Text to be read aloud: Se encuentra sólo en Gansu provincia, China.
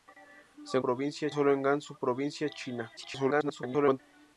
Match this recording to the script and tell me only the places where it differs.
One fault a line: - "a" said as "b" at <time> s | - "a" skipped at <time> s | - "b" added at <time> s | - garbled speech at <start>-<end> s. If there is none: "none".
- "encuentra" said as "provincia" at 0.8 s
- garbled speech at 3.0-4.0 s